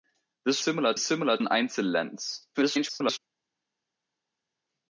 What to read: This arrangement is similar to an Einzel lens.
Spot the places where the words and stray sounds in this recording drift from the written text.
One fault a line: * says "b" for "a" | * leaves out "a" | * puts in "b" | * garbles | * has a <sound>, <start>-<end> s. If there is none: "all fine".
* says "similar" for "arrangement"
* leaves out "to"
* garbles